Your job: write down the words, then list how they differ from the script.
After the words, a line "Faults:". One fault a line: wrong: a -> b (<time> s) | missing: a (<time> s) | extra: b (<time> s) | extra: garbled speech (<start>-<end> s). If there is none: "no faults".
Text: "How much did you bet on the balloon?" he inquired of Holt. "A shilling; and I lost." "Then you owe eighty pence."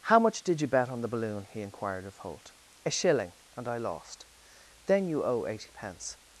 "How much did you bet on the balloon?" he inquired of Holt. "A shilling; and I lost." "Then you owe eighty pence."
Faults:
no faults